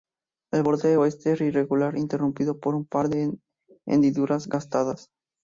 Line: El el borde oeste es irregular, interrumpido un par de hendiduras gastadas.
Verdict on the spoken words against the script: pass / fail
fail